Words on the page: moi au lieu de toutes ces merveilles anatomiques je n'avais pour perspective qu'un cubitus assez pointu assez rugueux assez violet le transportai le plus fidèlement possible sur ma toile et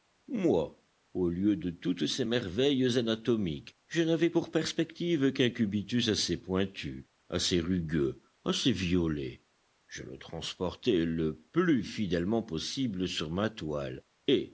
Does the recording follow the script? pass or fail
fail